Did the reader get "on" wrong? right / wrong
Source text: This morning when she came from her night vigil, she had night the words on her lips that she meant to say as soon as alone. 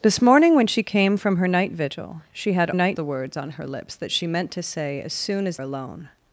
right